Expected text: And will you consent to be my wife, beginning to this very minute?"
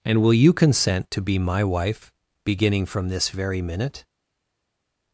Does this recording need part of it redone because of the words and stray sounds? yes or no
yes